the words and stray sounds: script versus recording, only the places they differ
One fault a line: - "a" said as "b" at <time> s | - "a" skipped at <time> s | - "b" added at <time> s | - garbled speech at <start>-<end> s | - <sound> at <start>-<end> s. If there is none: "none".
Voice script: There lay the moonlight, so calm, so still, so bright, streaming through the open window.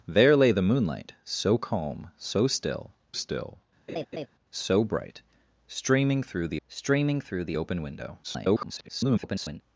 - "still" added at 3.1 s
- laugh at 3.9-4.3 s
- "streaming through the" added at 6.7 s
- garbled speech at 8.2-9.6 s